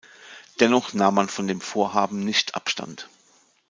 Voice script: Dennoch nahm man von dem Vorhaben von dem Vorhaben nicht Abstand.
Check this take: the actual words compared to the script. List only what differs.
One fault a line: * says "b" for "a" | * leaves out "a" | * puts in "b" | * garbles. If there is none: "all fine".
* leaves out "von dem Vorhaben"